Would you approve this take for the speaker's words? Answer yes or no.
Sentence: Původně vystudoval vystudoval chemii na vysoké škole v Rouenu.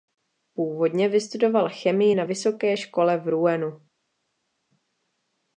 no